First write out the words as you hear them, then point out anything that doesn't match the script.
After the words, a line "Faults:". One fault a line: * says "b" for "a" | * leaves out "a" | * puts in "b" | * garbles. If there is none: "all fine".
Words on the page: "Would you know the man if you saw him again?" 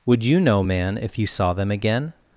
"Would you know man if you saw them again?"
Faults:
* leaves out "the"
* says "them" for "him"